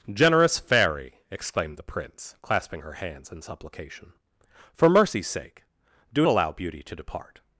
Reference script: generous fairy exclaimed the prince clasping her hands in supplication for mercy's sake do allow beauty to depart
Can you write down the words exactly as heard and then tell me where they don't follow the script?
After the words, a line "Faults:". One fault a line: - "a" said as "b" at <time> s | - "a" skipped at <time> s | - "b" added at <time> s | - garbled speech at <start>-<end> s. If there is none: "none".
generous fairy exclaimed the prince clasping her hands in supplication for mercy's sake do allow beauty to depart
Faults:
none